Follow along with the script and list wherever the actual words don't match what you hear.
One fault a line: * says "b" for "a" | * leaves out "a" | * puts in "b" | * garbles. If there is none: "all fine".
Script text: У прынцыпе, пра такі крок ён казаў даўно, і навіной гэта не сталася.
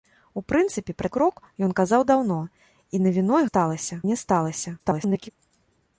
* leaves out "такі"
* says "сталася" for "гэта"
* garbles